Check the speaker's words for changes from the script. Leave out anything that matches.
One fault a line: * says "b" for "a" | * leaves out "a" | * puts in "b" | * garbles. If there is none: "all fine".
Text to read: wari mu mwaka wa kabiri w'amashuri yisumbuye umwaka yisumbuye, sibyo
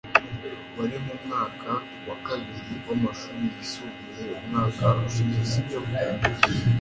* says "ushize" for "yisumbuye"